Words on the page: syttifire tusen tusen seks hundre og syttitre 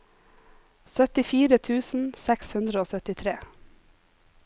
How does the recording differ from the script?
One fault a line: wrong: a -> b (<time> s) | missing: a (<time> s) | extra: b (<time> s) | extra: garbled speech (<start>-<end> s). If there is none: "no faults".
missing: tusen (2.1 s)